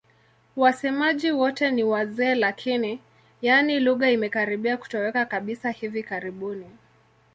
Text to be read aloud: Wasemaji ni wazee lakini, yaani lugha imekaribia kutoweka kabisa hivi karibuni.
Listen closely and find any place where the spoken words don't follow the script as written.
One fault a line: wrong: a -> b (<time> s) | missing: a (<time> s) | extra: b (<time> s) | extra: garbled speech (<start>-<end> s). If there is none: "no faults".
extra: wote (1.3 s)